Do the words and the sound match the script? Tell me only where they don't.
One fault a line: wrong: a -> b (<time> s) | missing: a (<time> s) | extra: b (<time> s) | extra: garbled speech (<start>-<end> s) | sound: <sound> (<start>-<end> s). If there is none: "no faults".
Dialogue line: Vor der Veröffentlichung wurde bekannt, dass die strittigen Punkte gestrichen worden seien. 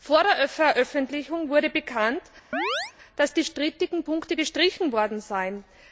sound: chirp (2.5-2.9 s)